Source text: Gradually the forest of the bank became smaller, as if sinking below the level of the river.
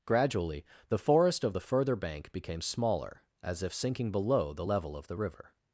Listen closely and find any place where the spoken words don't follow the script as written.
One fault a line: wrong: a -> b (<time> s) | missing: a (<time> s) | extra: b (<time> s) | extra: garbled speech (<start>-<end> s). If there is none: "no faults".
extra: further (1.6 s)